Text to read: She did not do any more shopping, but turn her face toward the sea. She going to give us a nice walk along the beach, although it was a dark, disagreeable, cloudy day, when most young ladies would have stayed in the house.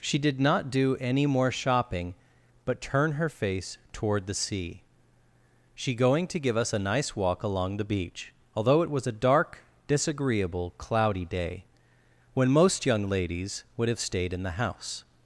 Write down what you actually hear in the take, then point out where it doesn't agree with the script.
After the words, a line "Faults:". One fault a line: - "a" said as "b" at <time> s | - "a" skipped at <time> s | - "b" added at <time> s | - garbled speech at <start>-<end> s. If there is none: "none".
She did not do any more shopping, but turn her face toward the sea. She going to give us a nice walk along the beach, although it was a dark, disagreeable, cloudy day, when most young ladies would have stayed in the house.
Faults:
none